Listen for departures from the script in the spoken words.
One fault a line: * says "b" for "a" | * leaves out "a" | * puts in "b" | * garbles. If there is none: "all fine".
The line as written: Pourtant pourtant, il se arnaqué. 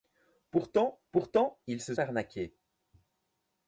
all fine